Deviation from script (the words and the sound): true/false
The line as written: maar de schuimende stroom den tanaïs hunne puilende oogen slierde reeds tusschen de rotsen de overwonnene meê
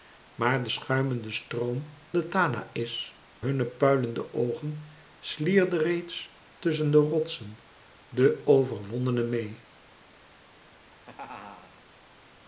true